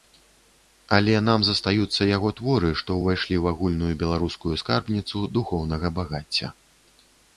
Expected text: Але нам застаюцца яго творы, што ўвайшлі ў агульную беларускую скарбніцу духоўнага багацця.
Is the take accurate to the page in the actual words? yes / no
yes